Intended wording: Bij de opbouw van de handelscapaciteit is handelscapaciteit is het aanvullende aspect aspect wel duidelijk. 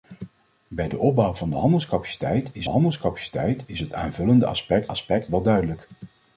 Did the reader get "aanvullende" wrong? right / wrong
right